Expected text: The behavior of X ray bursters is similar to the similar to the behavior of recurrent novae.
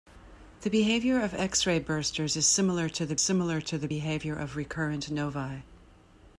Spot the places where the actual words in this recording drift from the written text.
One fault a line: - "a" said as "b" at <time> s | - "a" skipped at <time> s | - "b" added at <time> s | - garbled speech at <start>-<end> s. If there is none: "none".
none